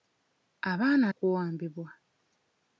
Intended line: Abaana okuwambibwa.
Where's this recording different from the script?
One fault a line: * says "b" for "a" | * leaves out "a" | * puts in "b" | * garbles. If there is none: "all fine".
all fine